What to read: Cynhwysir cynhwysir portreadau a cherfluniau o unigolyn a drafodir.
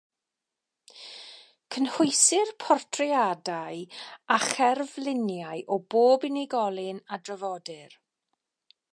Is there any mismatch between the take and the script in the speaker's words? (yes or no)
yes